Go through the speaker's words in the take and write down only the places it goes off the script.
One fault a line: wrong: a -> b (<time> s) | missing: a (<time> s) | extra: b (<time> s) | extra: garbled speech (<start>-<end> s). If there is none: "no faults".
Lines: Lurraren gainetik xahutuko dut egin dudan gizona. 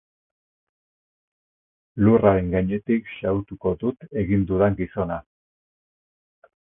no faults